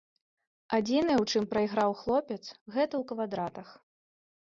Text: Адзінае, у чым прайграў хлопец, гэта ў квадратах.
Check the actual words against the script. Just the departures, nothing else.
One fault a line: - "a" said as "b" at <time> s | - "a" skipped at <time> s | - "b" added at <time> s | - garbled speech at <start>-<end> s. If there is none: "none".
none